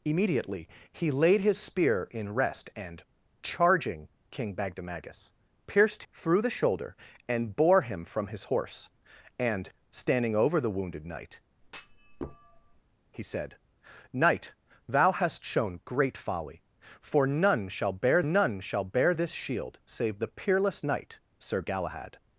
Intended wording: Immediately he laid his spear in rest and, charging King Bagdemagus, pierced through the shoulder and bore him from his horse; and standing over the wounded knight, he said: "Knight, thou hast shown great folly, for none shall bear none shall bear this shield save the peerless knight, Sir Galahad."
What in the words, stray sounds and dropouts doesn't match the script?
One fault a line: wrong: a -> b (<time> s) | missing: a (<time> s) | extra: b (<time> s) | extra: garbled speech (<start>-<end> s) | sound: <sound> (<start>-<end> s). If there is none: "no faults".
sound: thud (11.6-12.8 s)